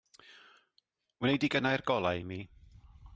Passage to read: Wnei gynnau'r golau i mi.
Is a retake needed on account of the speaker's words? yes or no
yes